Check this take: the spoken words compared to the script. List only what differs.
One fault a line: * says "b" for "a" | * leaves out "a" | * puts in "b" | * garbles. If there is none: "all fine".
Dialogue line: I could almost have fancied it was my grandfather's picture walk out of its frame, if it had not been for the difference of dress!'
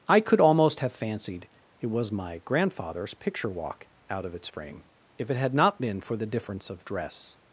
all fine